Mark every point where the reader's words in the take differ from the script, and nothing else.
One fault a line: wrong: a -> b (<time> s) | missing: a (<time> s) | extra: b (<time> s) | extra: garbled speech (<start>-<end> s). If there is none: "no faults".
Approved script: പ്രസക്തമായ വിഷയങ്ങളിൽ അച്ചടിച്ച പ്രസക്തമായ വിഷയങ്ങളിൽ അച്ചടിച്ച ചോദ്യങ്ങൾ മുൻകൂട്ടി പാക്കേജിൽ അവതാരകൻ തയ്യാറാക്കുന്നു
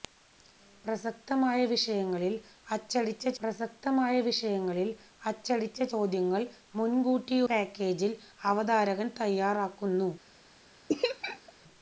no faults